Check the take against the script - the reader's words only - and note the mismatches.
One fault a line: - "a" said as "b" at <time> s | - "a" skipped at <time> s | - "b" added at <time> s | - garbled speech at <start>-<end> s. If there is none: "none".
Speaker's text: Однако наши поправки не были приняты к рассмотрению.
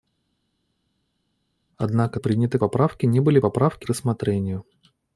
- "наши" said as "приняты" at 2.1 s
- "приняты" said as "поправки" at 3.4 s